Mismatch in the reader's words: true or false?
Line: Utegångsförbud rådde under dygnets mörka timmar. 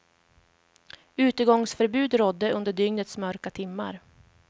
false